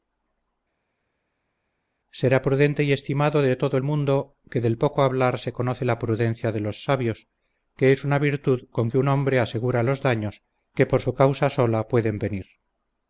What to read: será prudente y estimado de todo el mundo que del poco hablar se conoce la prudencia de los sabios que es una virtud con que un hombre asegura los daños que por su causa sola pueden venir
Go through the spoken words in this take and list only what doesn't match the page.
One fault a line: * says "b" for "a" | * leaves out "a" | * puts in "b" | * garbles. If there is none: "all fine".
all fine